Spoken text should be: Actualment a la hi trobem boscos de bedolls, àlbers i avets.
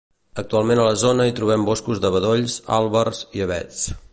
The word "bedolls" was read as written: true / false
true